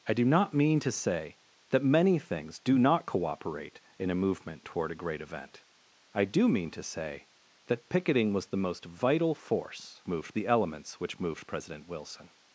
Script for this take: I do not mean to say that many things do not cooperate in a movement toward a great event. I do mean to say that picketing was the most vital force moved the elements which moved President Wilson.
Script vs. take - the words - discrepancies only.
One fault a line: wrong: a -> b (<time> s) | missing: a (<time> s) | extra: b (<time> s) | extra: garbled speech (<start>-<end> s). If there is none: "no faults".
no faults